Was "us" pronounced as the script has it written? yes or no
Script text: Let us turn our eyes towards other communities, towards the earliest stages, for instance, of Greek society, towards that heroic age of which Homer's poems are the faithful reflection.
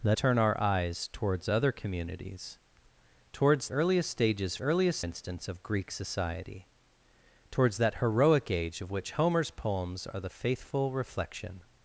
no